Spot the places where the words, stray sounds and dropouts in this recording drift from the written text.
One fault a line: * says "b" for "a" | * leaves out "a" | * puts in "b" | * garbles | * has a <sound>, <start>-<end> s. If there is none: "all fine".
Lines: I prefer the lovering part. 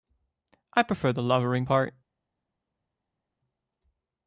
all fine